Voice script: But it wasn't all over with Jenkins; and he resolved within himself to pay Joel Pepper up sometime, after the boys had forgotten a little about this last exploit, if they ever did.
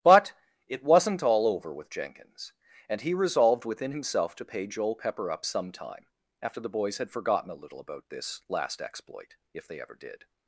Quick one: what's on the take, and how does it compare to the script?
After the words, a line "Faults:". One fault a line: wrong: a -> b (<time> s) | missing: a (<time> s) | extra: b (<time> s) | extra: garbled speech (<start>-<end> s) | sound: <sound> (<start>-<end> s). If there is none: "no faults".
But it wasn't all over with Jenkins; and he resolved within himself to pay Joel Pepper up sometime, after the boys had forgotten a little about this last exploit, if they ever did.
Faults:
no faults